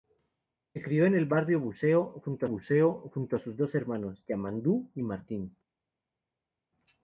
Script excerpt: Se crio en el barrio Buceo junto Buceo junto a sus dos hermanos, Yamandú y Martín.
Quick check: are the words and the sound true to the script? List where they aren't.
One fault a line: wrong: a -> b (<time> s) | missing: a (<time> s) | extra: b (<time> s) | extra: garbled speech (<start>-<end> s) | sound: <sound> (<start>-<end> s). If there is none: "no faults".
no faults